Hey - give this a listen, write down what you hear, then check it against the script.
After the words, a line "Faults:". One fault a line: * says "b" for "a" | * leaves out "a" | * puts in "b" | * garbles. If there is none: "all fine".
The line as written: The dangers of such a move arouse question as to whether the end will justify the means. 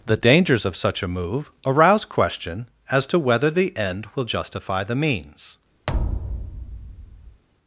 The dangers of such a move arouse question as to whether the end will justify the means.
Faults:
all fine